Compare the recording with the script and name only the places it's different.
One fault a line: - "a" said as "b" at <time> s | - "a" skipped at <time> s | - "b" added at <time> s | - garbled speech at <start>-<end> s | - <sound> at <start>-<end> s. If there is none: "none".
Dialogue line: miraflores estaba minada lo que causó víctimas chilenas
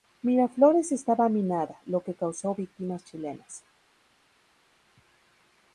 none